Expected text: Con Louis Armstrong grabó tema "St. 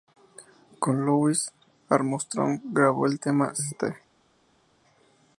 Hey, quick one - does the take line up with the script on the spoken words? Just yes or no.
no